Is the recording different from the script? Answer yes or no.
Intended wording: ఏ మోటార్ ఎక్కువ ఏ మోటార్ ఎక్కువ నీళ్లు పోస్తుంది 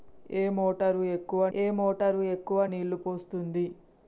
no